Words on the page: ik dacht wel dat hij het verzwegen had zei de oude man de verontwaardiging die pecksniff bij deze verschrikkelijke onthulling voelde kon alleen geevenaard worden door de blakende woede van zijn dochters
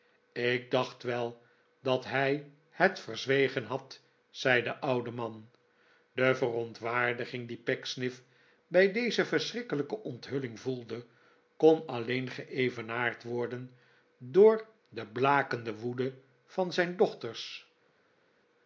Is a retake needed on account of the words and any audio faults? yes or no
no